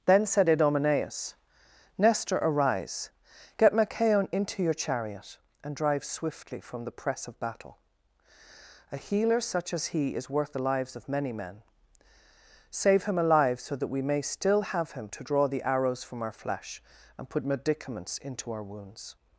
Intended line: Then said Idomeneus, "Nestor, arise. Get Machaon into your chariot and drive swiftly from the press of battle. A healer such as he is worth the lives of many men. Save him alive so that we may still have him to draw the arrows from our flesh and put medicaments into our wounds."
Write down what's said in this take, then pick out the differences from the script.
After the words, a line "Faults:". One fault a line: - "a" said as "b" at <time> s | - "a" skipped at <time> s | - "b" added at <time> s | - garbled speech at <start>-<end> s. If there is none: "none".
Then said Idomeneus, "Nestor, arise. Get Machaon into your chariot and drive swiftly from the press of battle. A healer such as he is worth the lives of many men. Save him alive so that we may still have him to draw the arrows from our flesh and put medicaments into our wounds."
Faults:
none